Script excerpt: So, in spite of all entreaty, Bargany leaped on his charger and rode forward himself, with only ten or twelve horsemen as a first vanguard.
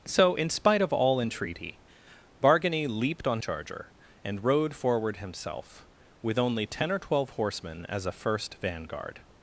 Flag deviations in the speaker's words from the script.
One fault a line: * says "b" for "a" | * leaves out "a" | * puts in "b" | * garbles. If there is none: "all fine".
* leaves out "his"